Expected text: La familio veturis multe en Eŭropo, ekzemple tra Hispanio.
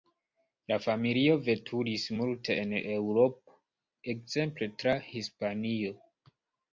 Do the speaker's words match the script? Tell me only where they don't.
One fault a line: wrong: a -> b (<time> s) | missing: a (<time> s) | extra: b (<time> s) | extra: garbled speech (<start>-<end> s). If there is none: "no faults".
no faults